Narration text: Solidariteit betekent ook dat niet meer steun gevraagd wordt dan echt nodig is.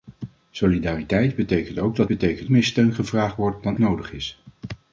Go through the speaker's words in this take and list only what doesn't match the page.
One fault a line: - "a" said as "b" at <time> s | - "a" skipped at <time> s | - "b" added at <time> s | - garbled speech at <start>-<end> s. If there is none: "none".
- "niet" said as "betekent" at 2.1 s
- "echt" skipped at 3.8 s